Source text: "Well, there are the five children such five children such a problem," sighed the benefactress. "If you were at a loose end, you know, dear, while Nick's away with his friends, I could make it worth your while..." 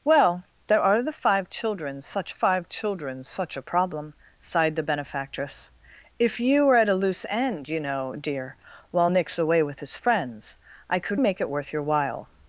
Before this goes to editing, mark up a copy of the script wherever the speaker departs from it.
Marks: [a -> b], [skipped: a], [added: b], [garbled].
"Well, there are the five children such five children such a problem," sighed the benefactress. "If you were at a loose end, you know, dear, while Nick's away with his friends, I could make it worth your while..."